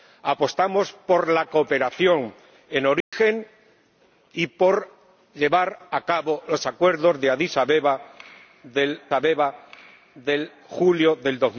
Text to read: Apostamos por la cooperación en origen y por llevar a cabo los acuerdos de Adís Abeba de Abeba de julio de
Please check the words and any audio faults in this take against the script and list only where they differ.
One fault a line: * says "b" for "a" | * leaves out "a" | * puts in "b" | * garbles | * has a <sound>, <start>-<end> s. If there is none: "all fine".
* has a dropout, 3.0-3.1 s